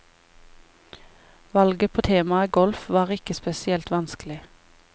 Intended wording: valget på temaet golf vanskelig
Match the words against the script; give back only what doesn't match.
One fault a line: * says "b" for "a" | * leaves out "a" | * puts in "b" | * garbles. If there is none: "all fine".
* puts in "var ikke spesielt"